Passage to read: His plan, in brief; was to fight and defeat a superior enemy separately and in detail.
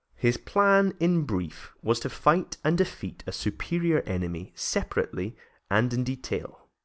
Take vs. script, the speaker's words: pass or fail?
pass